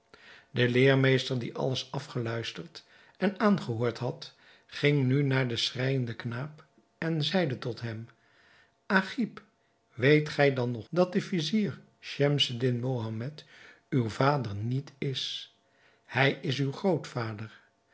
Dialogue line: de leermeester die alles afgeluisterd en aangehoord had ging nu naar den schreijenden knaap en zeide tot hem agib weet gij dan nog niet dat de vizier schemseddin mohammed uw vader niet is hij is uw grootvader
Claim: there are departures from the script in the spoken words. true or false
true